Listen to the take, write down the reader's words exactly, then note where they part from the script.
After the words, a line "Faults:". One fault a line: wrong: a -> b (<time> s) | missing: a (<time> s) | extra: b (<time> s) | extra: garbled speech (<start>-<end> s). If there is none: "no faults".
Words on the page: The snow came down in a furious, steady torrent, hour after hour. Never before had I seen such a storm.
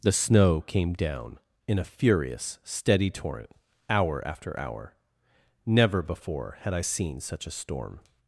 The snow came down in a furious, steady torrent, hour after hour. Never before had I seen such a storm.
Faults:
no faults